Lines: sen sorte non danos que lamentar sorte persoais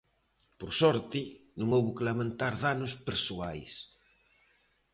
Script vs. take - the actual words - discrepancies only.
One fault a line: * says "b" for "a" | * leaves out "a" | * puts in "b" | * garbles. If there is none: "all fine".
* says "por" for "sen"
* says "houbo" for "danos"
* says "danos" for "sorte"